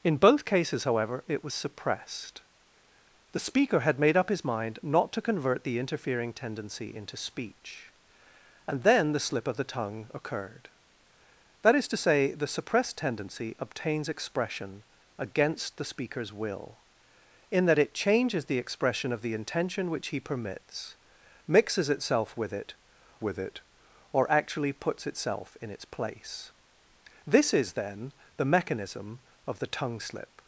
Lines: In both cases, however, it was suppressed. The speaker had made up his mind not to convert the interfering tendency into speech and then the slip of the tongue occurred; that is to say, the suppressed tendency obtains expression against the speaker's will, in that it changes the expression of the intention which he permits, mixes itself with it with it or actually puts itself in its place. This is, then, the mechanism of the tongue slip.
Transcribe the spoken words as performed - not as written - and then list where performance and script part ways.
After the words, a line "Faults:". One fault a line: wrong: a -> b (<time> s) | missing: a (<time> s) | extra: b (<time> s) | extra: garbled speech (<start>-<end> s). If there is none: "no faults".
In both cases, however, it was suppressed. The speaker had made up his mind not to convert the interfering tendency into speech and then the slip of the tongue occurred; that is to say, the suppressed tendency obtains expression against the speaker's will, in that it changes the expression of the intention which he permits, mixes itself with it with it or actually puts itself in its place. This is, then, the mechanism of the tongue slip.
Faults:
no faults